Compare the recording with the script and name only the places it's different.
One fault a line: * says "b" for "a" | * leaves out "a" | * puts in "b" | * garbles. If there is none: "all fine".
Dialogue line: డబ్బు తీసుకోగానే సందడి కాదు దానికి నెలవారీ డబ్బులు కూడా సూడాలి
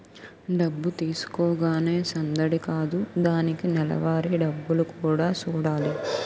all fine